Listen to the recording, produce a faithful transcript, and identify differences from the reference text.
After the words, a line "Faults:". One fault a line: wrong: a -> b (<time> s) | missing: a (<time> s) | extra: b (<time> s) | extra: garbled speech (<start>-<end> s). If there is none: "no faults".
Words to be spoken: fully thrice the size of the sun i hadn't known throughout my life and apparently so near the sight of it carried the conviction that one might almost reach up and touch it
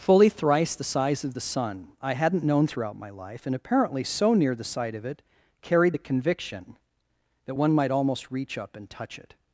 fully thrice the size of the sun i hadn't known throughout my life and apparently so near the sight of it carried the conviction that one might almost reach up and touch it
Faults:
no faults